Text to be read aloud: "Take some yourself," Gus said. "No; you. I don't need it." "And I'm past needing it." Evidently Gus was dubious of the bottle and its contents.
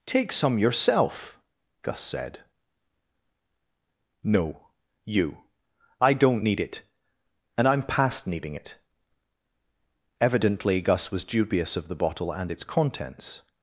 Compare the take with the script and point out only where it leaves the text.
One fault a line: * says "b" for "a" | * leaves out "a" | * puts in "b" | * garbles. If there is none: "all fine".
all fine